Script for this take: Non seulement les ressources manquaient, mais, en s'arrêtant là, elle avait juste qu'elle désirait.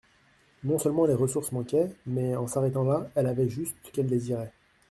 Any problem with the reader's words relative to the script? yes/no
no